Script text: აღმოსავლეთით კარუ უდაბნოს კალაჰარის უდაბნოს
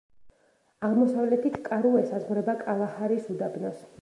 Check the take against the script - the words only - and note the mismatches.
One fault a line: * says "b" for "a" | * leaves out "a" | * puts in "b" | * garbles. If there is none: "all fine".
* says "ესაზღვრება" for "უდაბნოს"